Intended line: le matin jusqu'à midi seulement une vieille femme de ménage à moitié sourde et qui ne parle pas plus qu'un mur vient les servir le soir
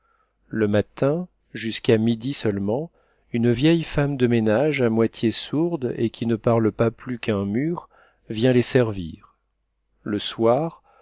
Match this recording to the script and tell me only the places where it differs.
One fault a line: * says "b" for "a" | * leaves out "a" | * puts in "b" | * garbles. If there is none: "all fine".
all fine